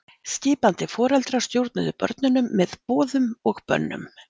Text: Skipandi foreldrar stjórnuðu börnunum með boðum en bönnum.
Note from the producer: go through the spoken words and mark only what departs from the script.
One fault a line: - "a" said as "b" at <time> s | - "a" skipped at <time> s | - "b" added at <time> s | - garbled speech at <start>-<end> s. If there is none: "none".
- "en" said as "og" at 3.5 s